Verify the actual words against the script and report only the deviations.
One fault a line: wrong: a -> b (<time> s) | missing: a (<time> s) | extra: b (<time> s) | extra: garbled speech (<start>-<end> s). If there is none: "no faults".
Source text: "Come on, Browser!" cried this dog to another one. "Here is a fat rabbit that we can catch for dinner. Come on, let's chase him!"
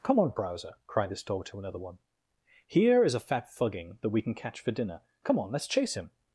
wrong: rabbit -> fugging (3.5 s)